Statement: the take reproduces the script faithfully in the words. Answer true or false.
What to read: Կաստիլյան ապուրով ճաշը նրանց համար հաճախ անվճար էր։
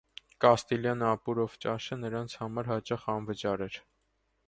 true